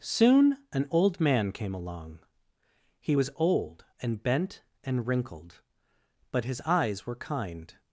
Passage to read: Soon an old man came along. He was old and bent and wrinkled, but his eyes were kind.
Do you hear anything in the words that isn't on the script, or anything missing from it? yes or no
no